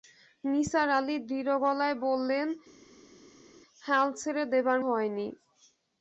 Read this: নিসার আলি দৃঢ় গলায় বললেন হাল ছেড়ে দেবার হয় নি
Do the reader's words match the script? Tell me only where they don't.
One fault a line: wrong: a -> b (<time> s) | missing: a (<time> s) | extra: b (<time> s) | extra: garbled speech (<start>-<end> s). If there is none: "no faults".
no faults